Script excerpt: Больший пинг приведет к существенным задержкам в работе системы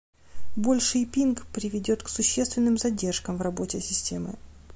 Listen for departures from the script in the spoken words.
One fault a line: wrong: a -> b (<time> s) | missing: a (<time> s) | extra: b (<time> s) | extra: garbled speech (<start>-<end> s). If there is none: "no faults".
no faults